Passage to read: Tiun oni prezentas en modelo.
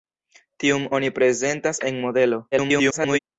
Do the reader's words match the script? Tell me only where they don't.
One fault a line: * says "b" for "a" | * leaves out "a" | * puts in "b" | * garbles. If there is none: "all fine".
* garbles